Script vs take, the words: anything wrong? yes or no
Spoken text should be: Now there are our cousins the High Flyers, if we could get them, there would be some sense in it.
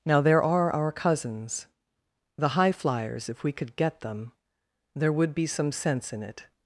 no